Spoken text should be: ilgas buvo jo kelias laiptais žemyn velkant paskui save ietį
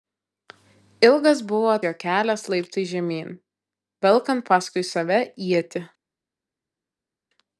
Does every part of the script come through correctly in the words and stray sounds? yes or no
yes